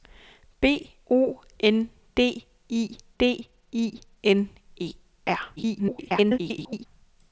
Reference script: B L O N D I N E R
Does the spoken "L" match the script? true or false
false